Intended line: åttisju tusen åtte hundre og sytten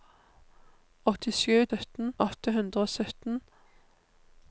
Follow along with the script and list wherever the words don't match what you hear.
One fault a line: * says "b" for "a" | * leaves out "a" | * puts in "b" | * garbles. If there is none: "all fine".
* says "sytten" for "tusen"